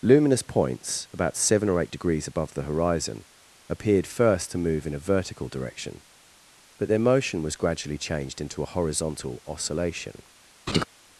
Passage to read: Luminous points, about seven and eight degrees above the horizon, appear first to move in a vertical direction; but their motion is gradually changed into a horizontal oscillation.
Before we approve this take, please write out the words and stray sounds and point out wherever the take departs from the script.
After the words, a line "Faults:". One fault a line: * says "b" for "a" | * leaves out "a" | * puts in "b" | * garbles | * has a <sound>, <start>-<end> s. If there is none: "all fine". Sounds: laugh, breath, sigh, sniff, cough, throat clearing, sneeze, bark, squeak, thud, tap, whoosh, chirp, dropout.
Luminous points, about seven or eight degrees above the horizon, appeared first to move in a vertical direction; but their motion was gradually changed into a horizontal oscillation.
Faults:
* says "or" for "and"
* says "appeared" for "appear"
* says "was" for "is"
* has a laugh, 10.7-10.8 s